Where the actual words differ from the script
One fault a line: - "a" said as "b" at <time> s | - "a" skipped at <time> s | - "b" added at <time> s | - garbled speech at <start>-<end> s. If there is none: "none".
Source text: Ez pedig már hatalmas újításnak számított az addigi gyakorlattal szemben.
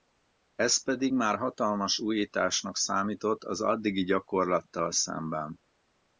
none